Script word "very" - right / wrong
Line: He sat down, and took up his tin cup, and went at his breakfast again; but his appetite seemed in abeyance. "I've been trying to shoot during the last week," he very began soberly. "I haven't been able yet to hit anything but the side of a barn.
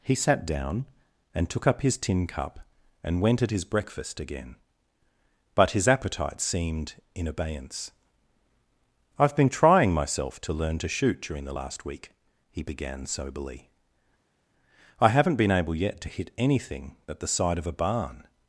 wrong